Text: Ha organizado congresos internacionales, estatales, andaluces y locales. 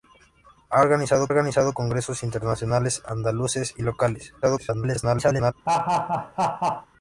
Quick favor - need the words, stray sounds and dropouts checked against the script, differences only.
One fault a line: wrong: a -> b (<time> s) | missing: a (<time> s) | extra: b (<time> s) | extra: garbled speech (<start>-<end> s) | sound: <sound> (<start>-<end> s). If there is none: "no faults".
extra: organizado (1.3 s)
missing: estatales (3.0 s)
extra: garbled speech (4.4-5.5 s)
sound: laugh (5.7-6.9 s)